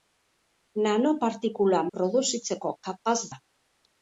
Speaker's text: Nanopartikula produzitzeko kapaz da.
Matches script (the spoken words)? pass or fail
pass